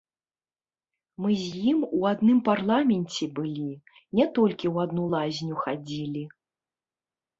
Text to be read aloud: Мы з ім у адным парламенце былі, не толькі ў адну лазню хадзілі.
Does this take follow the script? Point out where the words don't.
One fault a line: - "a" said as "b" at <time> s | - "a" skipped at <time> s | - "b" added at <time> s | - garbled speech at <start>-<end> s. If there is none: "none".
none